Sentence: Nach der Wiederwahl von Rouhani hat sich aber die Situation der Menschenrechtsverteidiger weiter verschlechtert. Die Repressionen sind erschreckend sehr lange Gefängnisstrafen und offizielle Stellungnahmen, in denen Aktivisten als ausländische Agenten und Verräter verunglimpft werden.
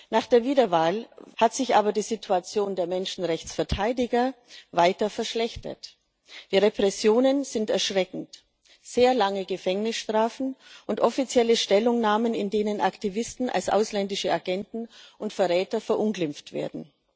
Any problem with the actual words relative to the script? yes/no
yes